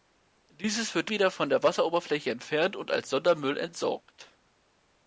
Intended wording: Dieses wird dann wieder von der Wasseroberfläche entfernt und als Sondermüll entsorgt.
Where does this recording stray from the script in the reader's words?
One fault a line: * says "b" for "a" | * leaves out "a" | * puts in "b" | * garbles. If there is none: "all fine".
* leaves out "dann"